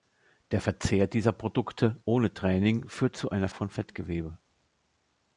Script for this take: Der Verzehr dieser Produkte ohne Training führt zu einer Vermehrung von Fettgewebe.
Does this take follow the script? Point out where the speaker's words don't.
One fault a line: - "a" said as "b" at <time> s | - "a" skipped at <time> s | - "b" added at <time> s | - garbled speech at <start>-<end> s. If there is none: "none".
- "Vermehrung" skipped at 3.5 s